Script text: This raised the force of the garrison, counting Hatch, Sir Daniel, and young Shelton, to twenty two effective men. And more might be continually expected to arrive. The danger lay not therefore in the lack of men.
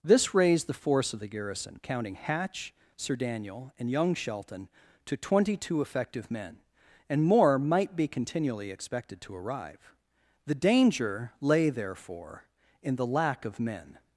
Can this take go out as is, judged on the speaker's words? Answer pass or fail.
fail